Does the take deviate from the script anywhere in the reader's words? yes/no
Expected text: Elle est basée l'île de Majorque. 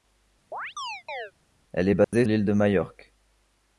no